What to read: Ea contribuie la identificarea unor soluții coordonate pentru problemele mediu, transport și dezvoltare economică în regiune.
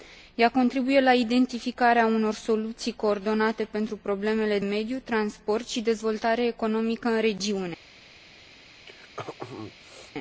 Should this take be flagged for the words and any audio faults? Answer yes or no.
yes